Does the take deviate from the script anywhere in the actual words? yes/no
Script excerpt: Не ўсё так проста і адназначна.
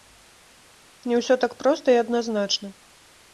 no